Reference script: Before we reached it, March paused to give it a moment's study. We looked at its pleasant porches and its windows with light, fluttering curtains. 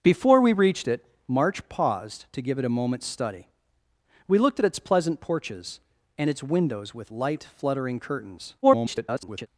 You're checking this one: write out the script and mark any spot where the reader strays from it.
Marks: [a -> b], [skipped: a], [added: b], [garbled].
Before we reached it, March paused to give it a moment's study. We looked at its pleasant porches and its windows with light, fluttering curtains. [garbled]